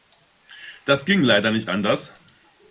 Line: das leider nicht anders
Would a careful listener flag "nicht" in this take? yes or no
no